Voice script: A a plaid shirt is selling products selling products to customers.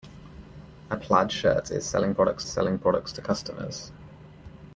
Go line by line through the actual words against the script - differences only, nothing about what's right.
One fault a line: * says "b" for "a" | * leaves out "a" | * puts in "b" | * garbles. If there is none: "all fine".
all fine